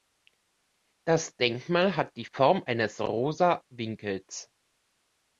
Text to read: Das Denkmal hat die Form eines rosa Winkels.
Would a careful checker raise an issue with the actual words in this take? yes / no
no